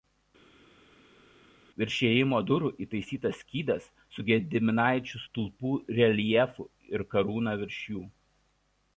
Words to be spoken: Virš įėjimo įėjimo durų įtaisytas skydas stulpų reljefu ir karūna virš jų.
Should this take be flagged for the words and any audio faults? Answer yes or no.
yes